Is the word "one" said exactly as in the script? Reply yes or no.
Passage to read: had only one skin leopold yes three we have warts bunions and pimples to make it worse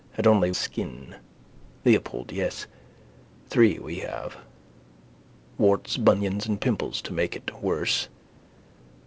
no